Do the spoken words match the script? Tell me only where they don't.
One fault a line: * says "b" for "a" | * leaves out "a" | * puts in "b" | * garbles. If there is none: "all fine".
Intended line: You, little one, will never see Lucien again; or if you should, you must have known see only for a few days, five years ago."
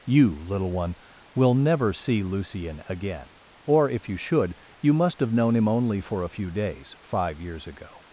* says "him" for "see"